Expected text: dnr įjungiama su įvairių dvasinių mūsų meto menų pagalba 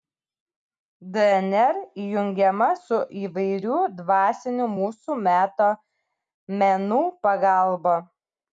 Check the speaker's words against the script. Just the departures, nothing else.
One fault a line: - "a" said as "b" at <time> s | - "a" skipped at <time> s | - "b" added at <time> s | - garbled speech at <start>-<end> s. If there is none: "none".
none